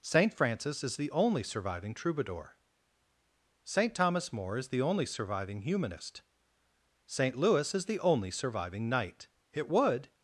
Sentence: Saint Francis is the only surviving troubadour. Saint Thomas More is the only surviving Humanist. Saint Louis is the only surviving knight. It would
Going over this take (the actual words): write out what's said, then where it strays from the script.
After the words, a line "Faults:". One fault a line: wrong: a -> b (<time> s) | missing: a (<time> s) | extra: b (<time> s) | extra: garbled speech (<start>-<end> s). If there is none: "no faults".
Saint Francis is the only surviving troubadour. Saint Thomas More is the only surviving Humanist. Saint Louis is the only surviving knight. It would
Faults:
no faults